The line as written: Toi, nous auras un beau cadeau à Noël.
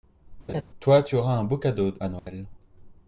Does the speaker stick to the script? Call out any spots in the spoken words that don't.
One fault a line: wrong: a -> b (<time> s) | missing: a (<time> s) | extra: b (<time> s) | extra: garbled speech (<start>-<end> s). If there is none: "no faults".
wrong: nous -> tu (1.0 s)